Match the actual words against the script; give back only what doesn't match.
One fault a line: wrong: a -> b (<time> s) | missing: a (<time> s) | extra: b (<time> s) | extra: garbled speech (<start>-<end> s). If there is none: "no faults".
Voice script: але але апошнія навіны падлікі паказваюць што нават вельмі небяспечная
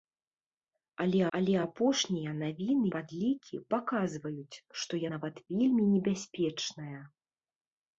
no faults